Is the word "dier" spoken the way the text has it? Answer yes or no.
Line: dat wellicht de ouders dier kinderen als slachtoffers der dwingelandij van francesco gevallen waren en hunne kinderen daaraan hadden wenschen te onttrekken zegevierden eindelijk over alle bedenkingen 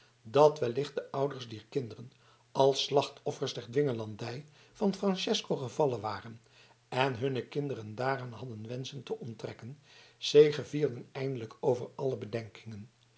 yes